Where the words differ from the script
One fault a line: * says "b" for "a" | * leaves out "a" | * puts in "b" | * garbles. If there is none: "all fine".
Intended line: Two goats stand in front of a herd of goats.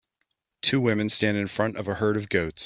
* says "women" for "goats"